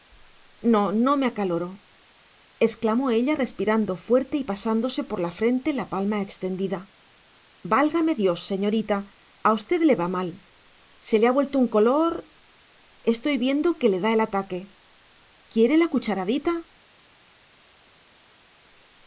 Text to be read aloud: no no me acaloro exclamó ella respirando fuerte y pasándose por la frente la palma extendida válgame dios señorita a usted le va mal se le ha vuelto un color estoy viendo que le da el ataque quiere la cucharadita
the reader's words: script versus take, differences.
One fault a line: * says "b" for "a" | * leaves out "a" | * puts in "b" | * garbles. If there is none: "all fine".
all fine